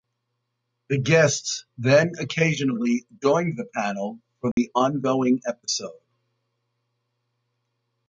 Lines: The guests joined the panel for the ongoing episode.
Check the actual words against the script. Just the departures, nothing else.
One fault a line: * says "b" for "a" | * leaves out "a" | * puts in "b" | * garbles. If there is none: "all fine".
* puts in "then occasionally"